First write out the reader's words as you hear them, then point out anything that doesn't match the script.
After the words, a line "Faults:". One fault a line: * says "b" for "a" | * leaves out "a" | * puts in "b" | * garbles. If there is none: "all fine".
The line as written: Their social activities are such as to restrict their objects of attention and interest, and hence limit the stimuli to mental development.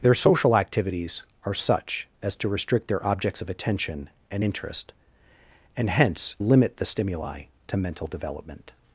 Their social activities are such as to restrict their objects of attention and interest, and hence limit the stimuli to mental development.
Faults:
all fine